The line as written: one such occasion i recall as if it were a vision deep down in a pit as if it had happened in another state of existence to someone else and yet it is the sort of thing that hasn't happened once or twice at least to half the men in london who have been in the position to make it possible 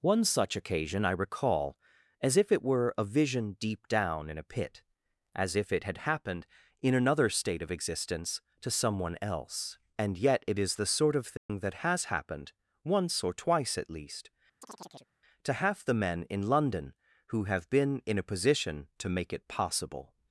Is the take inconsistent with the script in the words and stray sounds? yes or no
yes